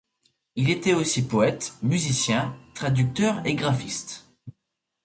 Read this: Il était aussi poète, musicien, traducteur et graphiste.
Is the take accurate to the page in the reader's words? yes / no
yes